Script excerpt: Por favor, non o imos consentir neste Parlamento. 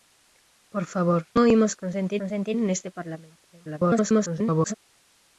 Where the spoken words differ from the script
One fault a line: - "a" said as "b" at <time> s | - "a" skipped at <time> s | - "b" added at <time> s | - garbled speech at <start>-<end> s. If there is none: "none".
- "non" skipped at 1.2 s
- "consentir" added at 2.2 s
- garbled speech at 3.5-4.7 s